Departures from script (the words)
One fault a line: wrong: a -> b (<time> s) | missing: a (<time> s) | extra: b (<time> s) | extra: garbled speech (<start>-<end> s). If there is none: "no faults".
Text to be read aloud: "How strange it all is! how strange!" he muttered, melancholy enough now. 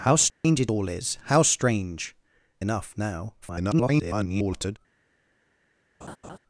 missing: he muttered melancholy (2.1 s)
extra: garbled speech (3.4-4.8 s)